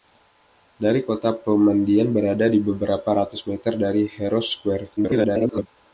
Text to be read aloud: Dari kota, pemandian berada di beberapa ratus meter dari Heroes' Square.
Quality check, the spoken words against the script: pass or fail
fail